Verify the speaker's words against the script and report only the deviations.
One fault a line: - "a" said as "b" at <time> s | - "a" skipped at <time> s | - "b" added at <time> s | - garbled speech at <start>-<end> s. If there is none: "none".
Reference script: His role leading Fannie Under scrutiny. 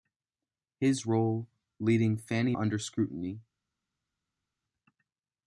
none